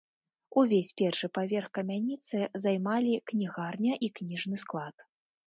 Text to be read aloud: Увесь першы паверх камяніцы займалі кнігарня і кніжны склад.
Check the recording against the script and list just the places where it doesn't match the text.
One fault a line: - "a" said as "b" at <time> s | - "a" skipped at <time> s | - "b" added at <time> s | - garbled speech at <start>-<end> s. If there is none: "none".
none